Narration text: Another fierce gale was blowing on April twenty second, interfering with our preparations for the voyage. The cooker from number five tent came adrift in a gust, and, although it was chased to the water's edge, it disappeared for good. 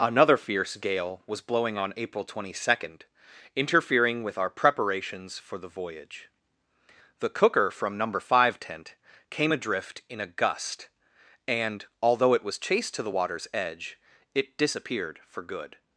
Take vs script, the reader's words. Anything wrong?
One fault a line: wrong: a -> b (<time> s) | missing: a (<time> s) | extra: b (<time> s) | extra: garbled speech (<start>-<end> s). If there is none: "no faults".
no faults